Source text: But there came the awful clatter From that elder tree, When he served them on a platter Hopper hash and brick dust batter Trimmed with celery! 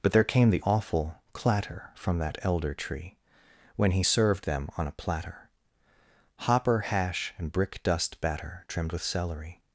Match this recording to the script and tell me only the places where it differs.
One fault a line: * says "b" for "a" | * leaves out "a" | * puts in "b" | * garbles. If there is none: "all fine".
all fine